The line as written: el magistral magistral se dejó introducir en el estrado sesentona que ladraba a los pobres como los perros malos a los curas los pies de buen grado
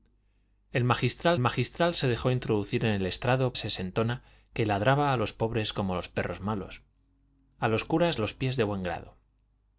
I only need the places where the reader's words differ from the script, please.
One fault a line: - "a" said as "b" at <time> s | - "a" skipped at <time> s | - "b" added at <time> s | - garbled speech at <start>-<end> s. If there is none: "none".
none